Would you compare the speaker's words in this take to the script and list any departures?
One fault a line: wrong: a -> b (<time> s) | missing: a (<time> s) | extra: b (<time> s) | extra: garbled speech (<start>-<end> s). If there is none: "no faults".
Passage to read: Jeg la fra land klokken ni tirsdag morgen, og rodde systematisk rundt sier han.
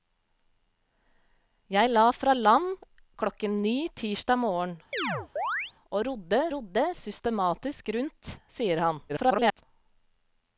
extra: rodde (6.6 s)
extra: garbled speech (9.1-9.6 s)